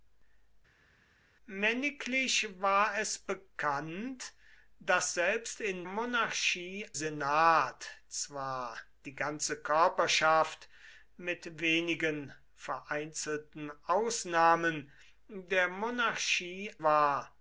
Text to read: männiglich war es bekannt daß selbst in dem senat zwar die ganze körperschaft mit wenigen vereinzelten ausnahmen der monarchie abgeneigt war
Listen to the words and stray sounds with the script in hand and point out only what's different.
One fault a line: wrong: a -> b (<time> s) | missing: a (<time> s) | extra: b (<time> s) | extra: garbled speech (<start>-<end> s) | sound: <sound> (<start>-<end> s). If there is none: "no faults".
wrong: dem -> monarchie (5.8 s)
missing: abgeneigt (16.7 s)